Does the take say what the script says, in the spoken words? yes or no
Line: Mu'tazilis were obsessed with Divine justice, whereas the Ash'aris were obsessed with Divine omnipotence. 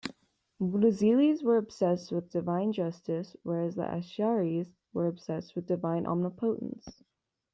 yes